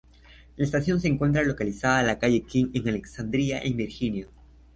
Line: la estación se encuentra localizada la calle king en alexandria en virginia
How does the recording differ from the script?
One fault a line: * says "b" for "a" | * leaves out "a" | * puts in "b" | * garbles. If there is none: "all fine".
all fine